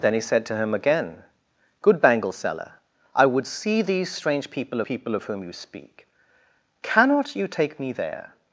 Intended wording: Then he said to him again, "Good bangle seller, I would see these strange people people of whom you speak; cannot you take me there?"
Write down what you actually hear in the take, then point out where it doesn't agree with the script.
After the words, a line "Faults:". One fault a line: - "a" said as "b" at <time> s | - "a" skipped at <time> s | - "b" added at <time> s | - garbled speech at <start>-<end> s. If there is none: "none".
Then he said to him again, "Good bangle seller, I would see these strange people people of whom you speak; cannot you take me there?"
Faults:
none